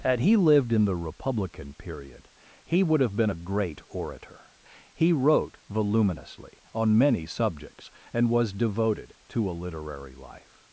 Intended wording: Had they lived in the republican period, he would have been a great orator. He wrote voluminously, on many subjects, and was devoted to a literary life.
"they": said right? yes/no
no